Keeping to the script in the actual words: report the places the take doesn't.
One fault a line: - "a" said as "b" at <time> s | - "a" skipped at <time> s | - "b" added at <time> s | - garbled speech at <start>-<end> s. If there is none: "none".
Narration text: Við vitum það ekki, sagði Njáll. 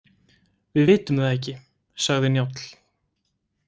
none